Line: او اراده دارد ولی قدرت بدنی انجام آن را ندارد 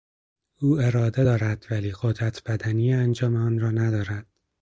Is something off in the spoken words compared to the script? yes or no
no